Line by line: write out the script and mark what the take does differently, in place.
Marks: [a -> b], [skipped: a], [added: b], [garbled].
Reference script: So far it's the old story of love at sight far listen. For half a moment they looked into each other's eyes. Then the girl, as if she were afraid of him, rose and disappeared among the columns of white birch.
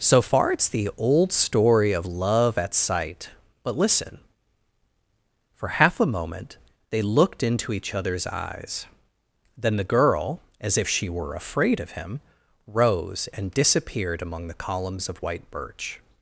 So far it's the old story of love at sight [far -> but] listen. For half a moment they looked into each other's eyes. Then the girl, as if she were afraid of him, rose and disappeared among the columns of white birch.